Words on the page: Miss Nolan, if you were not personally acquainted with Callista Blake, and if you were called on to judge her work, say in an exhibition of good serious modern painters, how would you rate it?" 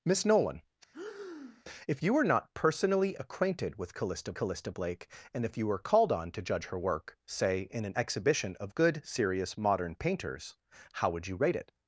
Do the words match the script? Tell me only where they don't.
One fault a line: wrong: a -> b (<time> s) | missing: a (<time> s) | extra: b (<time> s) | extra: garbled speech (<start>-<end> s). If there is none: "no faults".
extra: Callista (4.3 s)